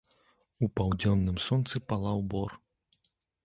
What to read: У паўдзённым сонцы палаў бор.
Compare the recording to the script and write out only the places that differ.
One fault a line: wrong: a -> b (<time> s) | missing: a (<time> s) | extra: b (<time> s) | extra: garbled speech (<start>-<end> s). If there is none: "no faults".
no faults